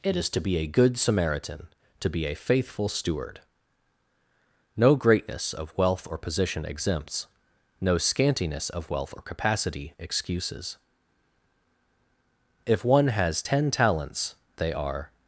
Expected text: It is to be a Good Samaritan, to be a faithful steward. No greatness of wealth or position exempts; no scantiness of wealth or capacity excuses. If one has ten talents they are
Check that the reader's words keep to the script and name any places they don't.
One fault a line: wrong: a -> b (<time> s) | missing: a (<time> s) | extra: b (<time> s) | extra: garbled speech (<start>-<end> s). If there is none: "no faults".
no faults